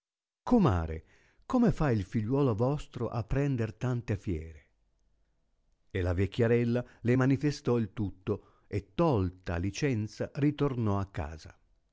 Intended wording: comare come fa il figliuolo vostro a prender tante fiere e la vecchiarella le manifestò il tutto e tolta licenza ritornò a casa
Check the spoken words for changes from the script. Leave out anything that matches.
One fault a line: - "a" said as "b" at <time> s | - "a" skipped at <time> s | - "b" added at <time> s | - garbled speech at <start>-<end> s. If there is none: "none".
none